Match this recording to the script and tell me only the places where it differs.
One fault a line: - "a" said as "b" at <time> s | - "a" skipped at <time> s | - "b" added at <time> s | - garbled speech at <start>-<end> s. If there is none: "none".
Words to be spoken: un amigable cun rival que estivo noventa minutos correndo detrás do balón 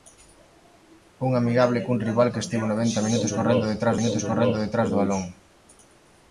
- "minutos correndo detrás" added at 4.0 s